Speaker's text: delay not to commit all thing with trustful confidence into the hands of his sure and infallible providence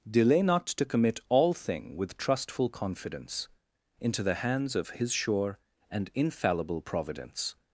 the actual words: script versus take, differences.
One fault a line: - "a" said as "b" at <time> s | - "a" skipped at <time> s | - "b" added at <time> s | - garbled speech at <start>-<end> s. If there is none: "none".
none